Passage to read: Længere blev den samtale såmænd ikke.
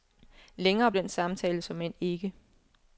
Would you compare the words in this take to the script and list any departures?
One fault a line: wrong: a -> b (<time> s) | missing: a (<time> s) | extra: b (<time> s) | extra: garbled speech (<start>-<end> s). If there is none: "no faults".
missing: blev (0.9 s)